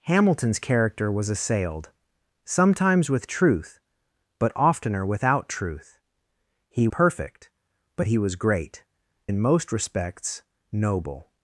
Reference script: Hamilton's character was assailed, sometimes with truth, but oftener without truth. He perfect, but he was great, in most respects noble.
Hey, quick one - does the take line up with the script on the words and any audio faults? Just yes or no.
yes